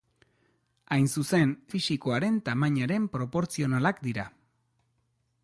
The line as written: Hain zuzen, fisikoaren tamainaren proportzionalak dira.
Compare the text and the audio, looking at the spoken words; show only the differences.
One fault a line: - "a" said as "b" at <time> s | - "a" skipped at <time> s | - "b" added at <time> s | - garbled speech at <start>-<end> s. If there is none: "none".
none